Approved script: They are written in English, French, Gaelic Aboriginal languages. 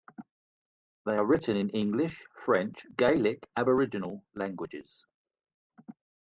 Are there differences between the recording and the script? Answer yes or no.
no